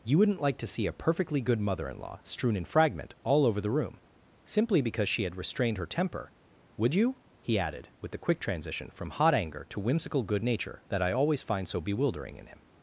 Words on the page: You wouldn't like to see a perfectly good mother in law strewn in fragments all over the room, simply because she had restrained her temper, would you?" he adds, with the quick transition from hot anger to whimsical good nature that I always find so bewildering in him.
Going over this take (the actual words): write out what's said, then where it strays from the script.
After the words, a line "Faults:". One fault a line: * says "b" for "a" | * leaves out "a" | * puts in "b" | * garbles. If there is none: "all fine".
You wouldn't like to see a perfectly good mother in law strewn in fragment all over the room, simply because she had restrained her temper, would you?" he added, with the quick transition from hot anger to whimsical good nature that I always find so bewildering in him.
Faults:
* says "fragment" for "fragments"
* says "added" for "adds"